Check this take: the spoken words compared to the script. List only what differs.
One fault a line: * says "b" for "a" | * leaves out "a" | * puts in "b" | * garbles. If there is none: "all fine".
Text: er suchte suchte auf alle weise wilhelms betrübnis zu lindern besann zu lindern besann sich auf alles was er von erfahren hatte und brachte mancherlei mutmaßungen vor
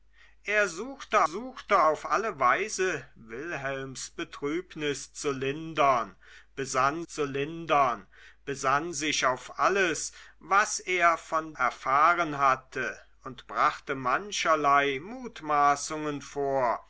all fine